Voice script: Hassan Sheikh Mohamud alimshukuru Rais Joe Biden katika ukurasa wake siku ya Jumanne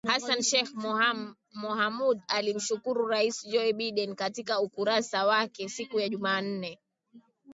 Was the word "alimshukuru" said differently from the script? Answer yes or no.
no